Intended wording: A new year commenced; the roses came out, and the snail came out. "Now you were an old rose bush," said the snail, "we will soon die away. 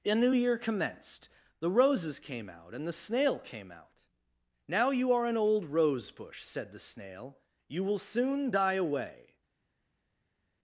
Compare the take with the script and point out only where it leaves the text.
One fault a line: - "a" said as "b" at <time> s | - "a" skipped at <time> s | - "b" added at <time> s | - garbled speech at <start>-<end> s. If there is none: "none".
- "were" said as "are" at 5.1 s
- "we" said as "you" at 7.7 s